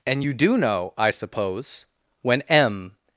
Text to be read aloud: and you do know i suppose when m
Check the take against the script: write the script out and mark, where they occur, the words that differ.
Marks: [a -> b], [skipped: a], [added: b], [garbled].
and you do know i suppose when m